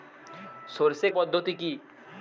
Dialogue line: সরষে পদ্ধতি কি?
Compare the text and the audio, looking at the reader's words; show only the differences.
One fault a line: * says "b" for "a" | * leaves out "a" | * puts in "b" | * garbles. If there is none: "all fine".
all fine